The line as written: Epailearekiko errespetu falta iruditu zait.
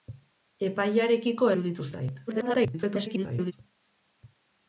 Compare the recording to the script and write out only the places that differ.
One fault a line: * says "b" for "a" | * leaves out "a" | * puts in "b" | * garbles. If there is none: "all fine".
* leaves out "errespetu falta"
* garbles